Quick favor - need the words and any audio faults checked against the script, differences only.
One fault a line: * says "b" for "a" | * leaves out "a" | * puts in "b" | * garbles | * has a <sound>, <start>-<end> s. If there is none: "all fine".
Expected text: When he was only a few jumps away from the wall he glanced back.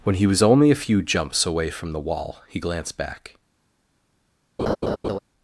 * has a laugh, 4.6-5.2 s